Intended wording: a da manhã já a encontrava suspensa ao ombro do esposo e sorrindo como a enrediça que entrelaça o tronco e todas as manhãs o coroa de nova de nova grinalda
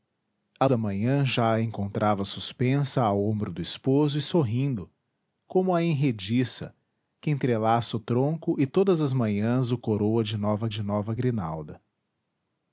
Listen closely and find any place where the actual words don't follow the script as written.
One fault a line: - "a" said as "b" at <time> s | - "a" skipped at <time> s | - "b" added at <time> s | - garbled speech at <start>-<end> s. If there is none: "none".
none